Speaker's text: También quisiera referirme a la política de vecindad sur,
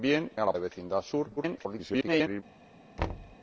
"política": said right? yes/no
no